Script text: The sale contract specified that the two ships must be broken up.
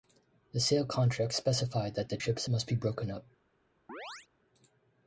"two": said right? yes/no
no